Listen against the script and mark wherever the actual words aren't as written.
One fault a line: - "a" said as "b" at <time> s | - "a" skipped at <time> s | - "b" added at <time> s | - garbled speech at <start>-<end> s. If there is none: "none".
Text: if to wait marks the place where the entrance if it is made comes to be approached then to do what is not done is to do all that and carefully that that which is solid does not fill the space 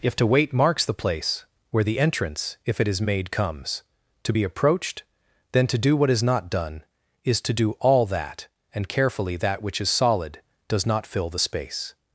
- "that" skipped at 9.6 s